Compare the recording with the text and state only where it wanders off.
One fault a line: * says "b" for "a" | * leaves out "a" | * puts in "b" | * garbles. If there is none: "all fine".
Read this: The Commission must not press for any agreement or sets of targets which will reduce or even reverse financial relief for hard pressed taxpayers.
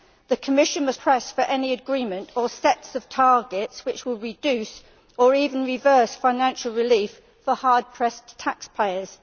* leaves out "not"